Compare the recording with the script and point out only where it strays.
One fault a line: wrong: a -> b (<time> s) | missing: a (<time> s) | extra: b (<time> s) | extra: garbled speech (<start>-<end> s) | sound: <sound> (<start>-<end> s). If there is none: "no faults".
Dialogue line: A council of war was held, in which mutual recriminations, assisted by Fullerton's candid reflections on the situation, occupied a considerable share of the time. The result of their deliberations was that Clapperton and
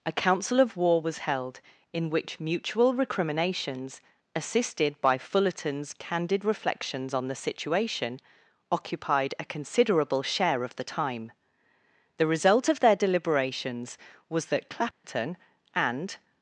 sound: dropout (14.9-15.0 s)